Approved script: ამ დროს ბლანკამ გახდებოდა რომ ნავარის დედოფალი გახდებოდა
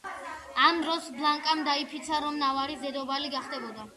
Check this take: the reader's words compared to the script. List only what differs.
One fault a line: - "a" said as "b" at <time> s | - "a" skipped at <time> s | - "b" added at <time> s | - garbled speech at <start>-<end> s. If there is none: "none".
- "გახდებოდა" said as "დაიფიცა" at 1.7 s